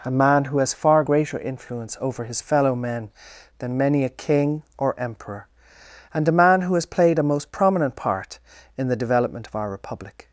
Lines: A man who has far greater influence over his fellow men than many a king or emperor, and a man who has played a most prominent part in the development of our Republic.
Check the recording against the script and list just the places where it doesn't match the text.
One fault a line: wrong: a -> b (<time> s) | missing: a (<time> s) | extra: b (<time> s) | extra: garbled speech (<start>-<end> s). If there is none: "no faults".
no faults